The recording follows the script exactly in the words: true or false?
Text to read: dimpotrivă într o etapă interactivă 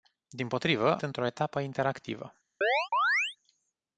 true